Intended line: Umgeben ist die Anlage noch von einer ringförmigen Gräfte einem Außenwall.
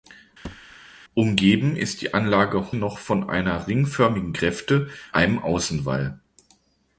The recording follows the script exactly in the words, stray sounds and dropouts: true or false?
false